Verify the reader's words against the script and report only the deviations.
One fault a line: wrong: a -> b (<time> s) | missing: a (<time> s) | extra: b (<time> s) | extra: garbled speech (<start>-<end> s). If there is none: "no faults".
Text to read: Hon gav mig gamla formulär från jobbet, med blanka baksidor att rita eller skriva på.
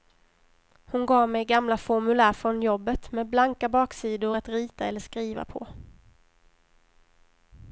no faults